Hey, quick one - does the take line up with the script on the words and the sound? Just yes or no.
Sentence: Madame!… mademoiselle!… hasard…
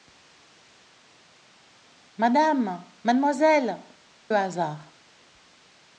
yes